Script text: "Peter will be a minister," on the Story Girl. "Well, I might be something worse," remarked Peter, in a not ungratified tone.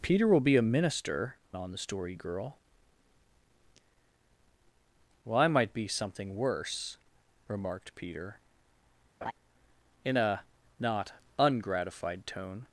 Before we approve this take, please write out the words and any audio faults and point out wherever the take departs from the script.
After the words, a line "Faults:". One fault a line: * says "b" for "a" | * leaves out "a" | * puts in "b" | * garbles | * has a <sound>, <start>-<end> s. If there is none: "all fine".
"Peter will be a minister," on the Story Girl. "Well, I might be something worse," remarked Peter, in a not ungratified tone.
Faults:
* has a laugh, 9.2-9.3 s